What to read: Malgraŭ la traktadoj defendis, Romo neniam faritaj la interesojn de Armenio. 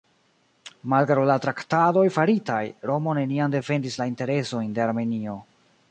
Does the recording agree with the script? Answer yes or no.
no